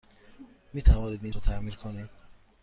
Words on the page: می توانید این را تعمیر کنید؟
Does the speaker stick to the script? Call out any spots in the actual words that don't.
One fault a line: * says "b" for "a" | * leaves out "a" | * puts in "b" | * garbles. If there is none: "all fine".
all fine